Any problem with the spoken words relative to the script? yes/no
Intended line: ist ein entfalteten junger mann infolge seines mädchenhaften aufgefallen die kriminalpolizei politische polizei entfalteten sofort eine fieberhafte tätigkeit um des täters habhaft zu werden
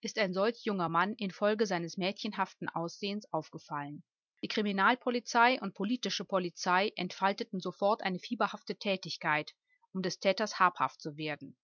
yes